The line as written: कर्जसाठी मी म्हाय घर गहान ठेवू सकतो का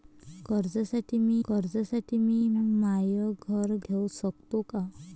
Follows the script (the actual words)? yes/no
no